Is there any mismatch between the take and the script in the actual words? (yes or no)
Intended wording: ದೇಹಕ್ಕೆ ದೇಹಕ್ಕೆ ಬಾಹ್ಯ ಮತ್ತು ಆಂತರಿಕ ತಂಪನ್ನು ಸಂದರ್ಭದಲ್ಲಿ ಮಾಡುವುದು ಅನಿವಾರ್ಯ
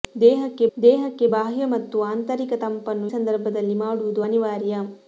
no